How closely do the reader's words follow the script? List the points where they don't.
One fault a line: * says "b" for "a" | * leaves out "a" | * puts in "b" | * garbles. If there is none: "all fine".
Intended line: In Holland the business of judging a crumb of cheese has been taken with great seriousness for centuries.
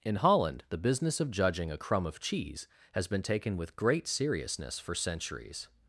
all fine